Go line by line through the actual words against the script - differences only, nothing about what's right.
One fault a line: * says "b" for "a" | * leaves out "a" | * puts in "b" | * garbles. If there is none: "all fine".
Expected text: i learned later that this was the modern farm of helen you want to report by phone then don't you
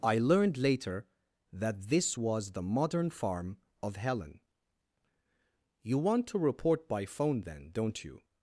all fine